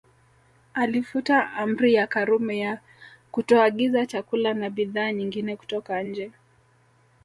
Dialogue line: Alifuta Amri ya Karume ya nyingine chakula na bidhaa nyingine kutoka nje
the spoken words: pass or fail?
fail